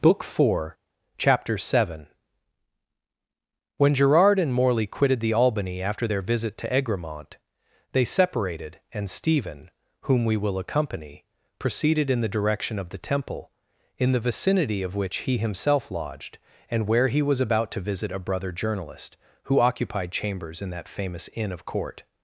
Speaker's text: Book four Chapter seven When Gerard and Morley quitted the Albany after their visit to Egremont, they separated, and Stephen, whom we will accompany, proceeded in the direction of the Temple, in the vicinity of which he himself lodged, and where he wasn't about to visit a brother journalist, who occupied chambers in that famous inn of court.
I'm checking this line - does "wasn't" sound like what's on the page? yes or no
no